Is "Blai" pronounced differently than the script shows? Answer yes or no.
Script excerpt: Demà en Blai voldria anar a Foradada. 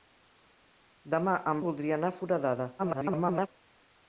yes